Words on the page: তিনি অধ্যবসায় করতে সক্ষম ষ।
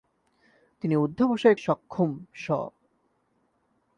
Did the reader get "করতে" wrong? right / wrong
wrong